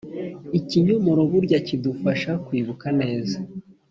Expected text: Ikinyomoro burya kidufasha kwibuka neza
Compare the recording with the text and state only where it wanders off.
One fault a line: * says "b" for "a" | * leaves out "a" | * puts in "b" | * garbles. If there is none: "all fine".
all fine